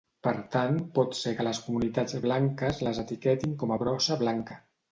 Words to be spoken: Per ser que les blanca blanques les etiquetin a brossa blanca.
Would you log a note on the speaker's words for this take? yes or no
yes